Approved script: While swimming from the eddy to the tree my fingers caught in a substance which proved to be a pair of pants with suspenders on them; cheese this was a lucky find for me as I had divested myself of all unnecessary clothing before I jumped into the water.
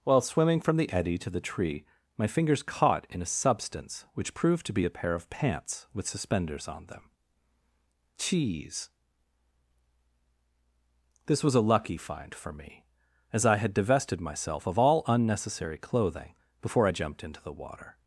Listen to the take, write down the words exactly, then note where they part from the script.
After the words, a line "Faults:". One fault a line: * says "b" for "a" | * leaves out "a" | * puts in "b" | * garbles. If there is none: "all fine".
While swimming from the eddy to the tree my fingers caught in a substance which proved to be a pair of pants with suspenders on them; cheese this was a lucky find for me as I had divested myself of all unnecessary clothing before I jumped into the water.
Faults:
all fine